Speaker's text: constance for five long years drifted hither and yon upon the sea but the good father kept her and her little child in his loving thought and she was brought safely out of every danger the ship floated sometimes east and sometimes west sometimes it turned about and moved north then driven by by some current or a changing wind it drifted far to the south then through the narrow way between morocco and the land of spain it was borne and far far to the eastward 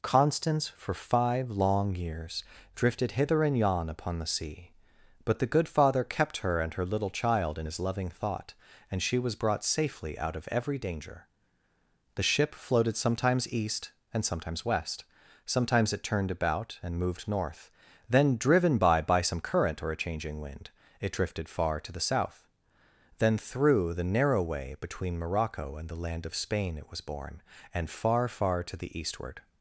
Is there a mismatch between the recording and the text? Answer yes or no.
no